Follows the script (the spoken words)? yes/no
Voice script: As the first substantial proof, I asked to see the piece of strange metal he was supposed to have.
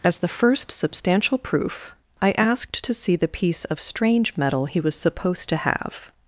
yes